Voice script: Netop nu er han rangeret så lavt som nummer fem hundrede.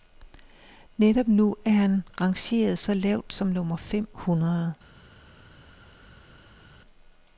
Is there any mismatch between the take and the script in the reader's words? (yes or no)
no